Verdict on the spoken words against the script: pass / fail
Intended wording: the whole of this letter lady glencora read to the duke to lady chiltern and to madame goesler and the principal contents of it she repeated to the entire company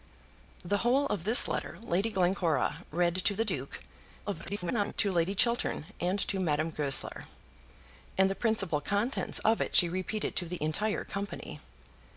fail